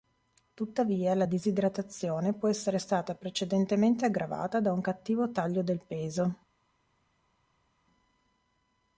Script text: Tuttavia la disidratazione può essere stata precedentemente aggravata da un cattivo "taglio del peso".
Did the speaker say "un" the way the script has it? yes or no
yes